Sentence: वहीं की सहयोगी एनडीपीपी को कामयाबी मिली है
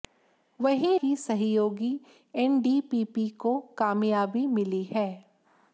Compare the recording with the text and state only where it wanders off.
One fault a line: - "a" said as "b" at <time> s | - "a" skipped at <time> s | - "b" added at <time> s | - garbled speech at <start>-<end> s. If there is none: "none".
none